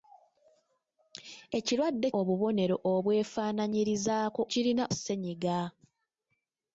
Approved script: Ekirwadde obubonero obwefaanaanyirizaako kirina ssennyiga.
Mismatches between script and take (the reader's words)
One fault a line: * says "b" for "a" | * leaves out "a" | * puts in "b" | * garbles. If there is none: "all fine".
all fine